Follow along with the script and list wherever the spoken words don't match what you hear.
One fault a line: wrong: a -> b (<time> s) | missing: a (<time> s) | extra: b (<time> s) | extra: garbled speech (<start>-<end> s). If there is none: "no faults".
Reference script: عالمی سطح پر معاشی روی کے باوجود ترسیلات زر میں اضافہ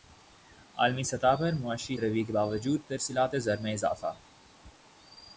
no faults